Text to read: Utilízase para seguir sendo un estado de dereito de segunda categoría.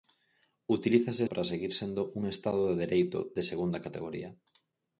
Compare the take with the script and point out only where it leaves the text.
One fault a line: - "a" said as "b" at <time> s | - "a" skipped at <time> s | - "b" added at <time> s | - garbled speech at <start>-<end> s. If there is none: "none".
none